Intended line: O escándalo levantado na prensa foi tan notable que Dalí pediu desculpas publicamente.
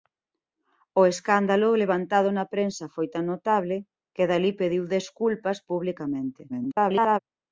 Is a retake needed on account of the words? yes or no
yes